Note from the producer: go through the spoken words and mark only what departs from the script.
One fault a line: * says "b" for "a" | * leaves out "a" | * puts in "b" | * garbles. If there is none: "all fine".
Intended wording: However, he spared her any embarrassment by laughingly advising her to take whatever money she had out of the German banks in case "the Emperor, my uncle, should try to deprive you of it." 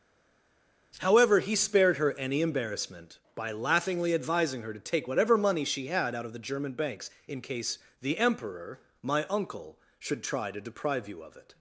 all fine